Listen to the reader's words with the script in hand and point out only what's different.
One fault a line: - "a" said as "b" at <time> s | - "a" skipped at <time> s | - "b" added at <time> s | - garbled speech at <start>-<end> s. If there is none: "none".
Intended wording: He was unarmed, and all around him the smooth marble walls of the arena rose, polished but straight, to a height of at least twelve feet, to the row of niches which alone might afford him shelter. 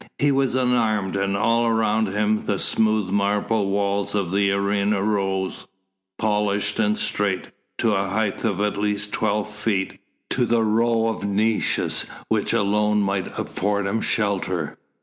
- "but" said as "and" at 6.8 s